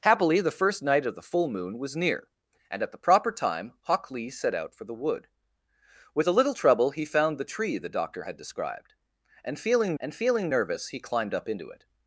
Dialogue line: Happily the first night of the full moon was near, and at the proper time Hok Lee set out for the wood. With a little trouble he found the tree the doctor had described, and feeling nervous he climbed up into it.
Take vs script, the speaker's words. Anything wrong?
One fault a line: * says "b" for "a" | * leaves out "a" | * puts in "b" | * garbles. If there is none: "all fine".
* puts in "and feeling"